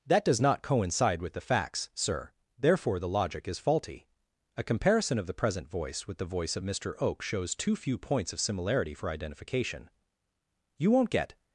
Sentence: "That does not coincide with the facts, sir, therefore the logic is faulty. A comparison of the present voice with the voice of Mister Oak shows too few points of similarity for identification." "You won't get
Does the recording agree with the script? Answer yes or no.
yes